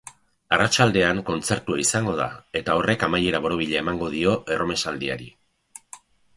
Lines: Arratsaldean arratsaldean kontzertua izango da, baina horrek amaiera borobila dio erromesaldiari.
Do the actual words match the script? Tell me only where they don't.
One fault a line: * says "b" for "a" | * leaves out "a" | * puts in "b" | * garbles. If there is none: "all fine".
* leaves out "arratsaldean"
* says "eta" for "baina"
* puts in "emango"